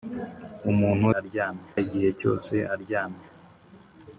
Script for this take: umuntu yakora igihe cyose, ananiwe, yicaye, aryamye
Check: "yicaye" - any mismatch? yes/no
yes